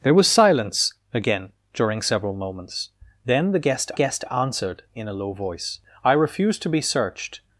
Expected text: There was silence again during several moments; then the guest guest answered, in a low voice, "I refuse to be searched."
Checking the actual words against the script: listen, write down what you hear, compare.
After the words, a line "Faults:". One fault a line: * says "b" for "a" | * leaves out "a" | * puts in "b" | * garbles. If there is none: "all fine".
There was silence again during several moments; then the guest guest answered, in a low voice, "I refuse to be searched."
Faults:
all fine